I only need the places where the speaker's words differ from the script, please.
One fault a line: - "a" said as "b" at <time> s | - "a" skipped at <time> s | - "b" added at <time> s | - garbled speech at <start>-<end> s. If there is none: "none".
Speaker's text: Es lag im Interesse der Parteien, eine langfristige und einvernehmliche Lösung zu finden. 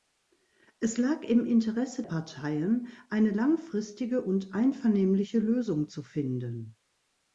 - "der" skipped at 2.0 s